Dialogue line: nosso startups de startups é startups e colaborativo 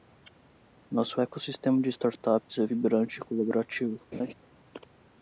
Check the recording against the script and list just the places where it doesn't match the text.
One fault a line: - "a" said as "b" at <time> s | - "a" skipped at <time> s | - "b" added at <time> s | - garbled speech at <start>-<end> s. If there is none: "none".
- "startups" said as "ecossistema" at 1.2 s
- "startups" said as "vibrante" at 2.6 s